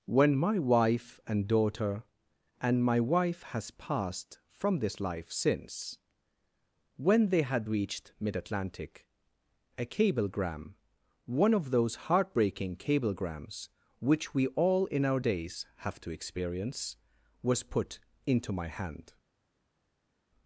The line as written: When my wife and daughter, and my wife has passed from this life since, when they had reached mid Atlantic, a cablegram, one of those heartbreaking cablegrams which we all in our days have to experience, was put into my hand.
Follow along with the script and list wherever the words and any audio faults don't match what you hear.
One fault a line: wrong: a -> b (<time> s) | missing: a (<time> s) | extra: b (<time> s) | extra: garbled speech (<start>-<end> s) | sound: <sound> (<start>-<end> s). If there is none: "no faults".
no faults